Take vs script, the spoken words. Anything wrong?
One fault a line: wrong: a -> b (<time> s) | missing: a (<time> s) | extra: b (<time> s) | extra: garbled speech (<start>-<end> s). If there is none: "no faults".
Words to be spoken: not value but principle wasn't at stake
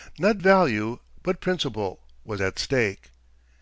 wrong: wasn't -> was (2.2 s)